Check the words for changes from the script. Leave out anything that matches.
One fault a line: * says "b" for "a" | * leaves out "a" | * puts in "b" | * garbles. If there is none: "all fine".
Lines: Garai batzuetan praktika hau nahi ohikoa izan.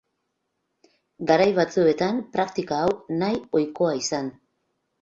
all fine